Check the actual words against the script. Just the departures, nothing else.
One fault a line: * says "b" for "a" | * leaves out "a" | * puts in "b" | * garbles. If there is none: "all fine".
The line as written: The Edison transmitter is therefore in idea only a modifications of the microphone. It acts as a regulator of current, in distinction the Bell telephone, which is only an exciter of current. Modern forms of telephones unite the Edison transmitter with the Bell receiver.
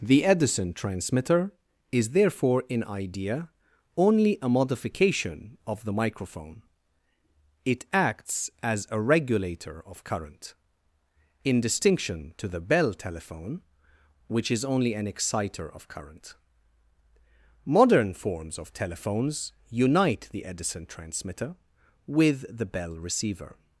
* says "modification" for "modifications"
* puts in "to"